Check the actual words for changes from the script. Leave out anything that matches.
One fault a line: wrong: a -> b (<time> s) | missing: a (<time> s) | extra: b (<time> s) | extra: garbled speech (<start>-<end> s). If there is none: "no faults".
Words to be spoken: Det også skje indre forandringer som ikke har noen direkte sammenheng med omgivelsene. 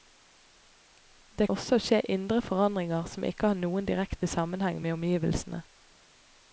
no faults